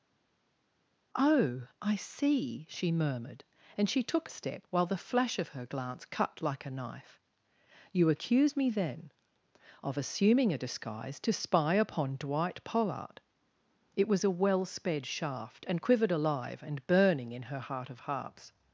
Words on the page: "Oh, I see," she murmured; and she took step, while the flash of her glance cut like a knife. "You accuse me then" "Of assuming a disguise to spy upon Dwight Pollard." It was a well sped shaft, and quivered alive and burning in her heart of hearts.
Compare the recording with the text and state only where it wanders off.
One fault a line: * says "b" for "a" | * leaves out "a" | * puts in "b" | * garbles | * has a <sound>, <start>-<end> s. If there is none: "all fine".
all fine